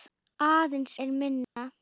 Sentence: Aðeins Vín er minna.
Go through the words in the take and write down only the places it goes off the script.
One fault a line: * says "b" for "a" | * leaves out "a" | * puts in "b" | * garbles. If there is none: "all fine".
* leaves out "Vín"